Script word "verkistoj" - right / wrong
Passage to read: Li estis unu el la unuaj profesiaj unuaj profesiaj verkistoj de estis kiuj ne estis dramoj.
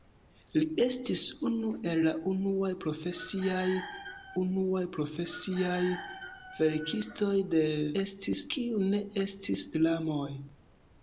right